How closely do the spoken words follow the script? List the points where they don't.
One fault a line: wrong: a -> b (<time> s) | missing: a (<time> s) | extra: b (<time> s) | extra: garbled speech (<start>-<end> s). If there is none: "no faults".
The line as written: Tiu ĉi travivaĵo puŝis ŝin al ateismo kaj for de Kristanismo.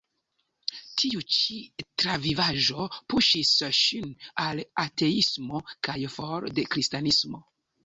no faults